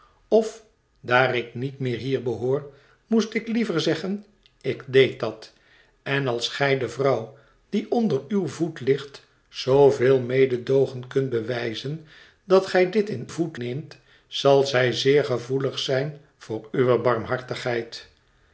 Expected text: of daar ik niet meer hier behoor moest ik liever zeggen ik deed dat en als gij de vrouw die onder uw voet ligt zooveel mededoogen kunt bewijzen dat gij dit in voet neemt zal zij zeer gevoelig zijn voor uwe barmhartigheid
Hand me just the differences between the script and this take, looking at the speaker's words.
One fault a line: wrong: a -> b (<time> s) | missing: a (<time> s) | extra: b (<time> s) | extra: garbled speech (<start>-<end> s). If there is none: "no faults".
no faults